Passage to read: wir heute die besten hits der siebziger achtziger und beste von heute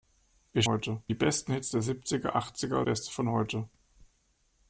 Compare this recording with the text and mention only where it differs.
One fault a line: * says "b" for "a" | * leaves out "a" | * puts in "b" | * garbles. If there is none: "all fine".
all fine